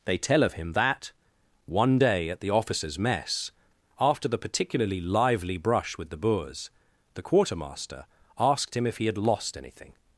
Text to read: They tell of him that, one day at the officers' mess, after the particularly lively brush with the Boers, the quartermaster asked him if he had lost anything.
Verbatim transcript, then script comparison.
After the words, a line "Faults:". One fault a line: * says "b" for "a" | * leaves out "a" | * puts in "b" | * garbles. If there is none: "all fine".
They tell of him that, one day at the officers' mess, after the particularly lively brush with the Boers, the quartermaster asked him if he had lost anything.
Faults:
all fine